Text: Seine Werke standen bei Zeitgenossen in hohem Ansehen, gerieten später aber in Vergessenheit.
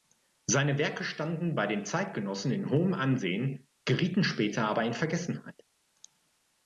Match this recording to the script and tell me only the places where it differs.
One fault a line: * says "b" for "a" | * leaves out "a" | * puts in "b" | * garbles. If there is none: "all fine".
* puts in "den"